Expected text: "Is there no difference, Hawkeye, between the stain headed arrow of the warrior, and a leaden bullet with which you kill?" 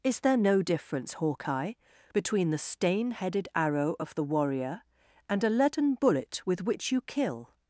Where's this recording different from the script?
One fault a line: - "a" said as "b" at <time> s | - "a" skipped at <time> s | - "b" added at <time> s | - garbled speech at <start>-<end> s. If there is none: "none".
none